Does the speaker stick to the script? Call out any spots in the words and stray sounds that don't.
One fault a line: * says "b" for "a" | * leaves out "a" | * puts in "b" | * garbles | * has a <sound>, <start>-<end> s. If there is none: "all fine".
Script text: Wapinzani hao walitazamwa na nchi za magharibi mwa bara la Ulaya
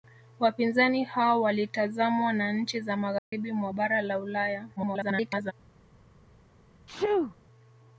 * has a dropout, 3.2-3.3 s
* garbles
* has a sneeze, 6.9-7.4 s